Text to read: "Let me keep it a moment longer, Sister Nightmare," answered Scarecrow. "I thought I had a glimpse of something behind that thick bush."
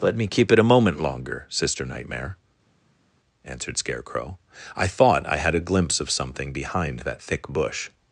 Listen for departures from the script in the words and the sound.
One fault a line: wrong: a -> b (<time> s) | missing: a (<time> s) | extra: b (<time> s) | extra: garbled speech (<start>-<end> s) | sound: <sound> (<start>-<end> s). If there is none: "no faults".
no faults